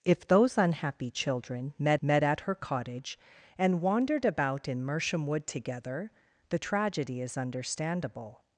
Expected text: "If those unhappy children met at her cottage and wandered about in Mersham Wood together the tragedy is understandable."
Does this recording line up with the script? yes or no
no